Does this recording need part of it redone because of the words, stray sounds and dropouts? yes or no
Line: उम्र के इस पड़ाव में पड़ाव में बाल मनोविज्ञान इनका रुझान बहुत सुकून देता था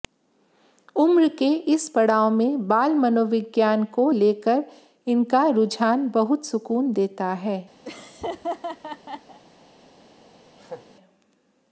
yes